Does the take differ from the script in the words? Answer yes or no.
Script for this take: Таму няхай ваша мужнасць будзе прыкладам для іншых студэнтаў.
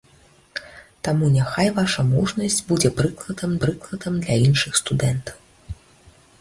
yes